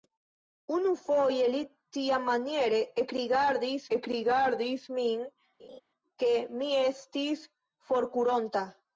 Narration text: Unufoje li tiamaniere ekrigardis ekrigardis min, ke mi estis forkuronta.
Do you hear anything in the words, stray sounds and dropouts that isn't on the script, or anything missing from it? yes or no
yes